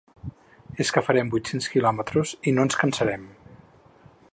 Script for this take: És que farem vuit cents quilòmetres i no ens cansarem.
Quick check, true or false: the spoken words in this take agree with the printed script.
true